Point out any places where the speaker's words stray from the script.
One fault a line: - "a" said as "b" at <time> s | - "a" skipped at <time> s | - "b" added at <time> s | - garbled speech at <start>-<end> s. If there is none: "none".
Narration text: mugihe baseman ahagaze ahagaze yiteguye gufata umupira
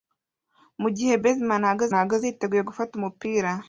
none